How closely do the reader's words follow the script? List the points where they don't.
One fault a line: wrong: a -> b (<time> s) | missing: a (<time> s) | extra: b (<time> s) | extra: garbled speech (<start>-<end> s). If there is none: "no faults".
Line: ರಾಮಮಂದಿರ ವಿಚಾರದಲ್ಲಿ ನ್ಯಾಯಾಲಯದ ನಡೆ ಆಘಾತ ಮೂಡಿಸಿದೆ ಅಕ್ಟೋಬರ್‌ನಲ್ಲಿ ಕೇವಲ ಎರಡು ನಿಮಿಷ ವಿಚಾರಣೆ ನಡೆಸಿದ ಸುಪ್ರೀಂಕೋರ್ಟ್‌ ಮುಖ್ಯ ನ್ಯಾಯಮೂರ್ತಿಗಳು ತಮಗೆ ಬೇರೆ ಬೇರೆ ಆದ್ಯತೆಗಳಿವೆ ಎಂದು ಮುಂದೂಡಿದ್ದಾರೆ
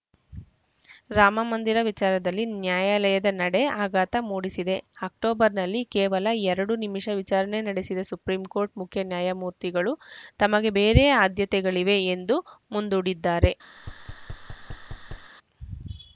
missing: ಬೇರೆ (11.0 s)